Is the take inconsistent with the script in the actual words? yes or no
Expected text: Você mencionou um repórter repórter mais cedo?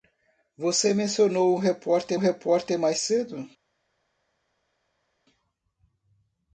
no